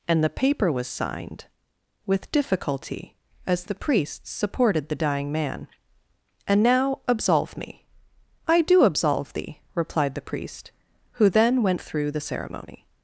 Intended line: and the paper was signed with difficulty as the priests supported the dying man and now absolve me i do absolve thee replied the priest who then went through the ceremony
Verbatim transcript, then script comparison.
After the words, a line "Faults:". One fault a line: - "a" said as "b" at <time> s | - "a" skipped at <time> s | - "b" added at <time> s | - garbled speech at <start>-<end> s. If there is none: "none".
and the paper was signed with difficulty as the priests supported the dying man and now absolve me i do absolve thee replied the priest who then went through the ceremony
Faults:
none